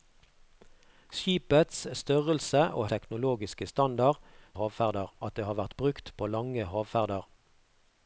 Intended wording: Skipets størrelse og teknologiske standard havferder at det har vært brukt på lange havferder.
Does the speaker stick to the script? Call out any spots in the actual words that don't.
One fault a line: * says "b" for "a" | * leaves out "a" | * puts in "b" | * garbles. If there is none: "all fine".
all fine